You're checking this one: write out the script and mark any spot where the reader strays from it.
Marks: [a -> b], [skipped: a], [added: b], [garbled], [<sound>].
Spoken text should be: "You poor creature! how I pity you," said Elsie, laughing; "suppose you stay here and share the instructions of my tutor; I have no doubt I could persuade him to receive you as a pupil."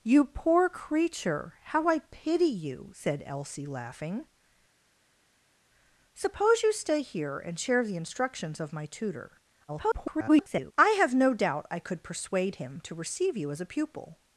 "You poor creature! how I pity you," said Elsie, laughing; "suppose you stay here and share the instructions of my tutor; [garbled] I have no doubt I could persuade him to receive you as a pupil."